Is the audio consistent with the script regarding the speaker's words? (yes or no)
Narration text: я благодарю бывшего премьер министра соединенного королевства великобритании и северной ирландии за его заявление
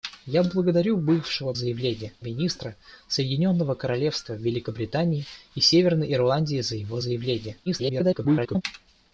no